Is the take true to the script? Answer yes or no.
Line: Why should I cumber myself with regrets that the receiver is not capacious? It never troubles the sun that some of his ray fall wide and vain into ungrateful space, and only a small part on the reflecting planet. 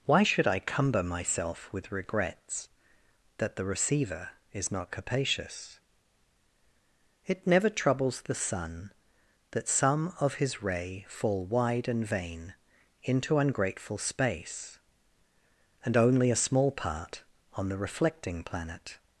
yes